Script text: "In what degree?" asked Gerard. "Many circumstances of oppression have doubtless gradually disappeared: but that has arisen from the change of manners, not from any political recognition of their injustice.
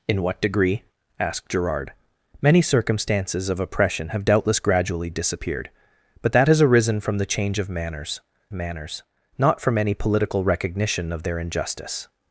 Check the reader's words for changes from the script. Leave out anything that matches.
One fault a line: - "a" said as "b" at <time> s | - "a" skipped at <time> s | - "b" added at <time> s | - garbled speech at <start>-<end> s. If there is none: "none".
- "manners" added at 8.5 s